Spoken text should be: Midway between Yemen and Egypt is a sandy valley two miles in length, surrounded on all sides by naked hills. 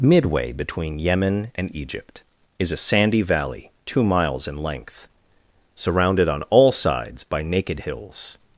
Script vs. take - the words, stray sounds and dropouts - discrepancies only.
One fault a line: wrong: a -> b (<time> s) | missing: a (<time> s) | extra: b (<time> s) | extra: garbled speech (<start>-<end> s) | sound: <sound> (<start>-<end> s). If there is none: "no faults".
no faults